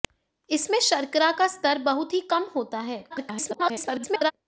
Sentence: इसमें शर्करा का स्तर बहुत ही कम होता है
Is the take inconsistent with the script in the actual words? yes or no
yes